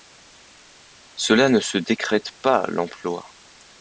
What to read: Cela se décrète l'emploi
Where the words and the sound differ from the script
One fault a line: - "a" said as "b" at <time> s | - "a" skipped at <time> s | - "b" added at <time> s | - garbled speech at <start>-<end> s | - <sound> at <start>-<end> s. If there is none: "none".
- "ne" added at 1.5 s
- "pas" added at 2.4 s